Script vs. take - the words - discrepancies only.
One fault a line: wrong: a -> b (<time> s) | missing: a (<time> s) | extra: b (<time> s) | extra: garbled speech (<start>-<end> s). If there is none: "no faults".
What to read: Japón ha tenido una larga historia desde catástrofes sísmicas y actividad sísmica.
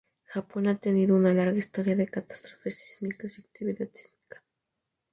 wrong: desde -> de (1.9 s)